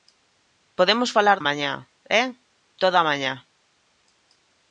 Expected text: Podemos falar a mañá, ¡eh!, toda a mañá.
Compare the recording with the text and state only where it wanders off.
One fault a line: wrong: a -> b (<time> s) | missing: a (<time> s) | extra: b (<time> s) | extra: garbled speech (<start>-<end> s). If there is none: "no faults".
no faults